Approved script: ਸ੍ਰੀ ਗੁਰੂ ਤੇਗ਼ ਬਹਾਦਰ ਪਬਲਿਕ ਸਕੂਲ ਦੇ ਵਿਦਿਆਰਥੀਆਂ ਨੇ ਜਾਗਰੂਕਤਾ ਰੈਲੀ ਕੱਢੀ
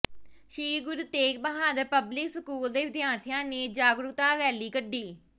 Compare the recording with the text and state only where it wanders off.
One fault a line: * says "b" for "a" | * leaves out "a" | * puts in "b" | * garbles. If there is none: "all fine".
all fine